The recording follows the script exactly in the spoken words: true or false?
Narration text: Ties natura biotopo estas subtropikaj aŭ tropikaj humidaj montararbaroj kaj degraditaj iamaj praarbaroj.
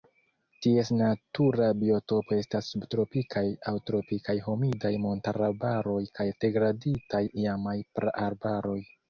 true